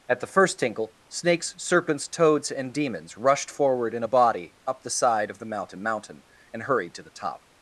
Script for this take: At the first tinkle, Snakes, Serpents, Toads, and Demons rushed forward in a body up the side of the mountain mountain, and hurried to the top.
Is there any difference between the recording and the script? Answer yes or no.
no